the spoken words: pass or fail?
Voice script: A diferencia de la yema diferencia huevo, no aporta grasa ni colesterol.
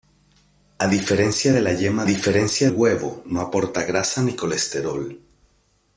pass